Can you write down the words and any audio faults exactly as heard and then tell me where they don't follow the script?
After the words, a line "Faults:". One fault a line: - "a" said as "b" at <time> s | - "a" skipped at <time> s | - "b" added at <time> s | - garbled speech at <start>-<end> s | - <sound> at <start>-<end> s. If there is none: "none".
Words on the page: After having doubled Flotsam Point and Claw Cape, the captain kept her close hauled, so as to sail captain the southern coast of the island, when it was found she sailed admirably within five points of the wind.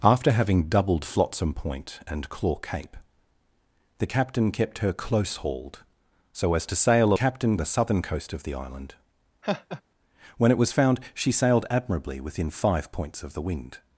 After having doubled Flotsam Point and Claw Cape, the captain kept her close hauled, so as to sail captain the southern coast of the island, when it was found she sailed admirably within five points of the wind.
Faults:
- laugh at 9.4-9.8 s